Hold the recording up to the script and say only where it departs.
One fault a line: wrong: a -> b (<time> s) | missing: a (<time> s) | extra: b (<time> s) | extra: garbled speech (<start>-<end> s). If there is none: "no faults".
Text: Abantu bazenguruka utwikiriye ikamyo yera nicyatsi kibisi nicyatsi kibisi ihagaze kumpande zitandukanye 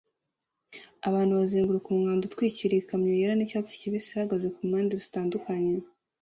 extra: umwanda (1.9 s)
missing: nicyatsi kibisi (4.1 s)